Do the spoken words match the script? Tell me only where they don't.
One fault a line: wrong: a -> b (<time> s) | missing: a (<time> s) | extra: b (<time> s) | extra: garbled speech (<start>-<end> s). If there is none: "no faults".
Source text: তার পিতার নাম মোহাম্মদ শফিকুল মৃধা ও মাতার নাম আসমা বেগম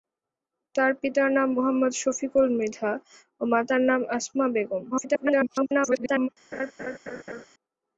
extra: garbled speech (4.9-6.3 s)